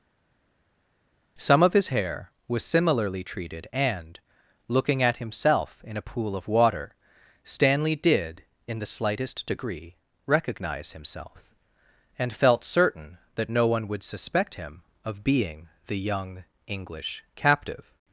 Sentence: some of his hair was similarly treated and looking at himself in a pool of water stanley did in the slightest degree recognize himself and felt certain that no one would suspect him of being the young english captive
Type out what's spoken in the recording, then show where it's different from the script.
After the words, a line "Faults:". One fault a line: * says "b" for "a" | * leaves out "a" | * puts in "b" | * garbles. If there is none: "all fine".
some of his hair was similarly treated and looking at himself in a pool of water stanley did in the slightest degree recognize himself and felt certain that no one would suspect him of being the young english captive
Faults:
all fine